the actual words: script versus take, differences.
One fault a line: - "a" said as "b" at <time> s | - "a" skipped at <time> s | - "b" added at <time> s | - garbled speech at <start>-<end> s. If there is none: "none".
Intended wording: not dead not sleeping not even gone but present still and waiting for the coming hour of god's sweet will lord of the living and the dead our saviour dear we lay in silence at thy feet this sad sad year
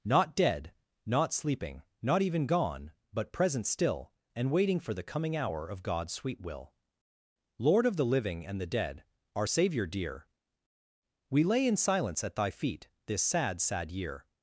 none